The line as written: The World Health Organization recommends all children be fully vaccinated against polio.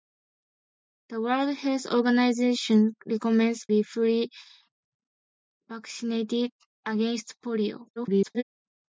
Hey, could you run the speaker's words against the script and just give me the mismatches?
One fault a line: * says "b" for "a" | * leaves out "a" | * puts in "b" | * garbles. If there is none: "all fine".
* leaves out "all children"
* garbles